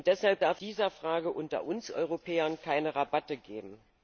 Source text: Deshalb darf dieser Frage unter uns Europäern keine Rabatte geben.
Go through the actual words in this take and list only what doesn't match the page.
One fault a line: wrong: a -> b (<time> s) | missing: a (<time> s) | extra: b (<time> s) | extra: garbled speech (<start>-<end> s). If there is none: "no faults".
no faults